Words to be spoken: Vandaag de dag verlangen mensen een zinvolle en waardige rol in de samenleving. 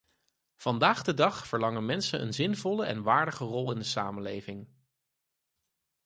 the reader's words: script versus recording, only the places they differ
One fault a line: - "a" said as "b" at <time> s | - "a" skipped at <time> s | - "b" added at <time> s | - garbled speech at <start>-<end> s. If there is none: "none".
none